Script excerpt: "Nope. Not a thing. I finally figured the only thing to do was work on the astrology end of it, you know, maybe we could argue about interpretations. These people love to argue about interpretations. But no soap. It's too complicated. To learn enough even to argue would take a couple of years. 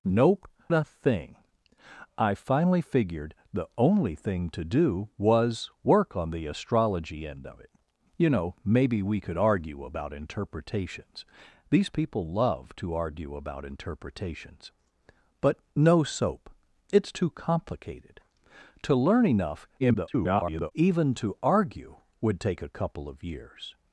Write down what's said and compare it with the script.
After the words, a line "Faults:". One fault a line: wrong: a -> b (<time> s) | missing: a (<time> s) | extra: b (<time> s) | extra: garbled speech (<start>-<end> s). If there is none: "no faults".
"Nope. A thing. I finally figured the only thing to do was work on the astrology end of it, you know, maybe we could argue about interpretations. These people love to argue about interpretations. But no soap. It's too complicated. To learn enough [garbled] even to argue would take a couple of years.
Faults:
missing: Not (0.5 s)
extra: garbled speech (19.8-20.7 s)